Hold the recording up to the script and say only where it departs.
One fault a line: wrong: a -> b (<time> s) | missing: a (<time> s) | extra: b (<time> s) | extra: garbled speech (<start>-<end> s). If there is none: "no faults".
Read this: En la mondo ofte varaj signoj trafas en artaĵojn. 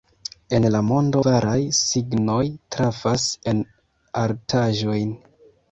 missing: ofte (1.2 s)